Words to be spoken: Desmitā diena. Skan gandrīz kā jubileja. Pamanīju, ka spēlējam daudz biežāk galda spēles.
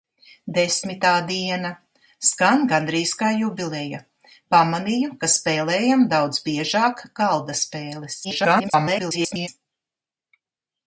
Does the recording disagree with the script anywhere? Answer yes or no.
yes